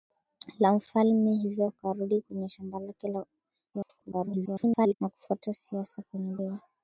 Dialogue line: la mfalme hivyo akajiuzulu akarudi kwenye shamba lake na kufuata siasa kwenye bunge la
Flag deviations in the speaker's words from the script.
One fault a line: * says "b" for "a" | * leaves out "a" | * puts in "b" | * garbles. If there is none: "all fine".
* leaves out "akajiuzulu"
* garbles
* leaves out "bunge"